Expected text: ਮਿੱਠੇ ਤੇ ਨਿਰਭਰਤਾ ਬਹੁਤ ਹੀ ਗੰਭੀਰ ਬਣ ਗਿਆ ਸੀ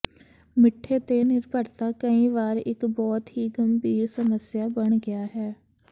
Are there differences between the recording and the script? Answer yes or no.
yes